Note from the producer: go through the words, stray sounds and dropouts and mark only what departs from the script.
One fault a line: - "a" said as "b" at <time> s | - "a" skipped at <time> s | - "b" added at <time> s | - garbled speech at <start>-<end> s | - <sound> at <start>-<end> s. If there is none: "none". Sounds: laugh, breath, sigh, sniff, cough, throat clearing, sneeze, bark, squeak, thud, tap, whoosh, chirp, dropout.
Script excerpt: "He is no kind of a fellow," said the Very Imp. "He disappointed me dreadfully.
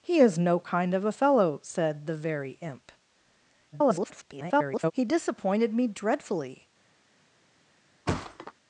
- garbled speech at 3.7-4.9 s
- thud at 8.1-8.5 s